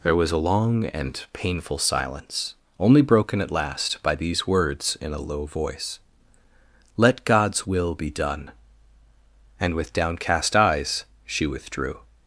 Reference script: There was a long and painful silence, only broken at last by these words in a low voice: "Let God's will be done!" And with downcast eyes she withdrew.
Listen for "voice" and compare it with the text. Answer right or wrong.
right